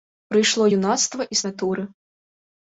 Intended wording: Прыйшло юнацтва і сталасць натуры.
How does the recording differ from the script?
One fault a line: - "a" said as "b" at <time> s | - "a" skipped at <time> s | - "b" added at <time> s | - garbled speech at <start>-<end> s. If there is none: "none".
- "сталасць" skipped at 1.4 s